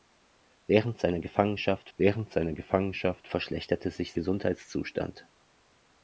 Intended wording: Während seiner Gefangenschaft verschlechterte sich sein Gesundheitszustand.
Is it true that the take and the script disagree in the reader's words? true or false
true